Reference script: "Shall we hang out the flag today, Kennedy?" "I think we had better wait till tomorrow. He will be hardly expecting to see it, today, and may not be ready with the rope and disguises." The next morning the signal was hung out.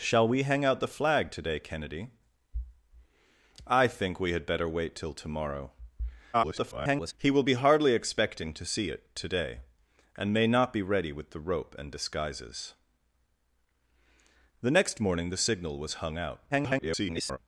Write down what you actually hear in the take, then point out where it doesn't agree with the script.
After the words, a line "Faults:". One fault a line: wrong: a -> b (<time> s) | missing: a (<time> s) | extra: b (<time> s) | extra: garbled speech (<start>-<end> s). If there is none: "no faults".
"Shall we hang out the flag today, Kennedy?" "I think we had better wait till tomorrow. [garbled] He will be hardly expecting to see it, today, and may not be ready with the rope and disguises." The next morning the signal was hung out. [garbled]
Faults:
extra: garbled speech (6.3-7.1 s)
extra: garbled speech (16.5-17.4 s)